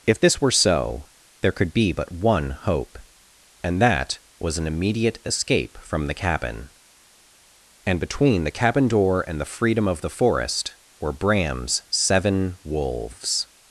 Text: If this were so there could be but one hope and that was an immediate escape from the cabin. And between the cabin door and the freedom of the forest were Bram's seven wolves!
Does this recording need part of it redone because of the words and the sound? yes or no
no